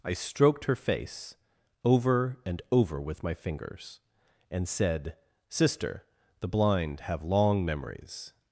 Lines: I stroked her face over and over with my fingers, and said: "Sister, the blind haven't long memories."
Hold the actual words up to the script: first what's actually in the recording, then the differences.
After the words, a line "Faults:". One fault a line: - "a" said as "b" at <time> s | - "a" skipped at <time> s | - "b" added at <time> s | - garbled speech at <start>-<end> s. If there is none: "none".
I stroked her face over and over with my fingers, and said: "Sister, the blind have long memories."
Faults:
- "haven't" said as "have" at 7.0 s